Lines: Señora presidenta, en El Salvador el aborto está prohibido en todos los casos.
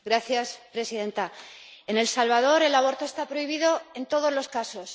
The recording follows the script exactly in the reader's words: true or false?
true